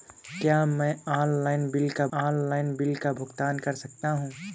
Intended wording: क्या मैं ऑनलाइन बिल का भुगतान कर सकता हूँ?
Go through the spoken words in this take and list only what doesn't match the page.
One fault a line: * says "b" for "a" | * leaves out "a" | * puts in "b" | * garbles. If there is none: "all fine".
* puts in "ऑनलाइन बिल का"